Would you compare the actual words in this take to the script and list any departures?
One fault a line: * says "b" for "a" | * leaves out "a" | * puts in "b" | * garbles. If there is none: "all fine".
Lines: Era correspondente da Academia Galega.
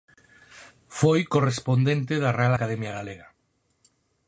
* says "Foi" for "Era"
* puts in "Real"